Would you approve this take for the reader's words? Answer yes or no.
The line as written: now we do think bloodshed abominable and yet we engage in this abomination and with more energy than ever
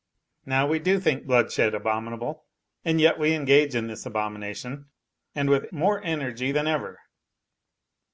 yes